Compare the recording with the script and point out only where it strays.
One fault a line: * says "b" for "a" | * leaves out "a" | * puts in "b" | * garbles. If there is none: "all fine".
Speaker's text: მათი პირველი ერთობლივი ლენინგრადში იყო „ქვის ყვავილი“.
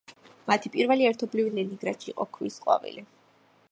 all fine